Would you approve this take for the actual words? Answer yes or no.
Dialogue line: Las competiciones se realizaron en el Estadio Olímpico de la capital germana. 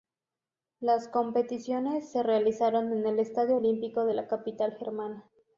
yes